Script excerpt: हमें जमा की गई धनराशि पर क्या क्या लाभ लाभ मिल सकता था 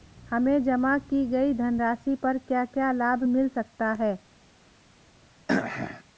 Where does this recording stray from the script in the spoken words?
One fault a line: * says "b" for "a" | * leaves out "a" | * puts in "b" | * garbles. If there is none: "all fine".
* leaves out "लाभ"
* says "है" for "था"